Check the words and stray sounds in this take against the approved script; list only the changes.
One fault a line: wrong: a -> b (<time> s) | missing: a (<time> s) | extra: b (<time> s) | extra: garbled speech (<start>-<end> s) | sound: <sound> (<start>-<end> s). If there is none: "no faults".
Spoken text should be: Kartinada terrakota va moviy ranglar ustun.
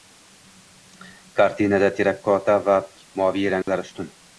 sound: dropout (3.6-3.7 s)